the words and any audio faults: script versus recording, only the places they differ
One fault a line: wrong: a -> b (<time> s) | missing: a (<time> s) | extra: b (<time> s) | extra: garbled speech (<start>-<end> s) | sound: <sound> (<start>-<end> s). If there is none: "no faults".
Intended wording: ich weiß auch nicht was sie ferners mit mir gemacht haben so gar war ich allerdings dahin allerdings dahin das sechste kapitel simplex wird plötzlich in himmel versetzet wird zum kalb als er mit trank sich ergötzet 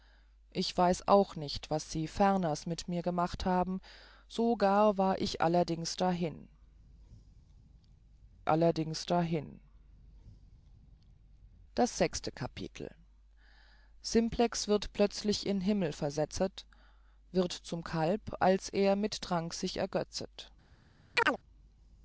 sound: chirp (21.1-21.4 s)